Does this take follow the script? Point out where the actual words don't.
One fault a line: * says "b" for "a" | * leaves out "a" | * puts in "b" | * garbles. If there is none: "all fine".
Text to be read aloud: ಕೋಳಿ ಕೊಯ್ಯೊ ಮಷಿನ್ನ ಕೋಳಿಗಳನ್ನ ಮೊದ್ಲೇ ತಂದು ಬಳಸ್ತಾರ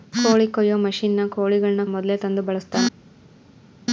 all fine